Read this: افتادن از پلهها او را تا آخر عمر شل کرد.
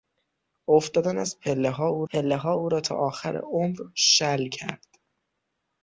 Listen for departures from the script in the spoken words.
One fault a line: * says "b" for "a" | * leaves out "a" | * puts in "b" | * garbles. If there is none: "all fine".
* puts in "پلهها او"